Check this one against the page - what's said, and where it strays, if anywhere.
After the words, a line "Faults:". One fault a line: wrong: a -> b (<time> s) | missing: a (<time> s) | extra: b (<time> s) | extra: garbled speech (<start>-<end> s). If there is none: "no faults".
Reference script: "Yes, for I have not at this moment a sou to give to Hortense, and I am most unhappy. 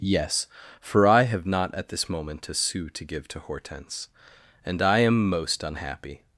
"Yes, for I have not at this moment a sou to give to Hortense, and I am most unhappy.
Faults:
no faults